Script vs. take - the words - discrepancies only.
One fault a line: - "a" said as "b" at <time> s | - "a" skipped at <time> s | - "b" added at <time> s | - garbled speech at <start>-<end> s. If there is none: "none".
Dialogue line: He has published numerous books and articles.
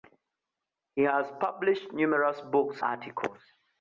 - "and" skipped at 2.8 s